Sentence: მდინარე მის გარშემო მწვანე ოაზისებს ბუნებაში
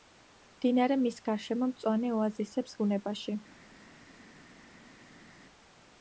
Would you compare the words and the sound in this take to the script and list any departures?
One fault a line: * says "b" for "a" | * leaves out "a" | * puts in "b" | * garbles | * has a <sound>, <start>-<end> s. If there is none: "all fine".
all fine